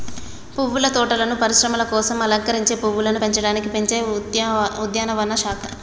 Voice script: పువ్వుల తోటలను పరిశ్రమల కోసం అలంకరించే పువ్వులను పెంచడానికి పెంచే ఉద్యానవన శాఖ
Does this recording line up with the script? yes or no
yes